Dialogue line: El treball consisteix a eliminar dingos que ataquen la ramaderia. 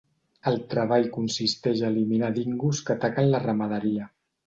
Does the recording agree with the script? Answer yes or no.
yes